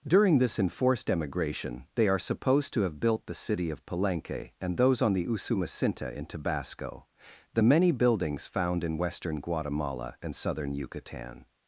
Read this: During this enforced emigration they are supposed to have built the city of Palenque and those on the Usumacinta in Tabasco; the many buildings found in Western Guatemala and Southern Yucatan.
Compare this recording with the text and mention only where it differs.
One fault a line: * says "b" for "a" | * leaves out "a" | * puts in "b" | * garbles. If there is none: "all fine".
all fine